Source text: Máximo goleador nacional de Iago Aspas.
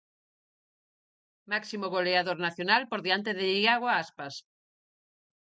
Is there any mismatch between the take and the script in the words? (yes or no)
yes